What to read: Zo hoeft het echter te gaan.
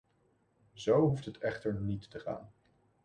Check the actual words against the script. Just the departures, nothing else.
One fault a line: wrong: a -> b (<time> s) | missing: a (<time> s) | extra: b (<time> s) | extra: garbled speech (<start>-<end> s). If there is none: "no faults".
extra: niet (1.8 s)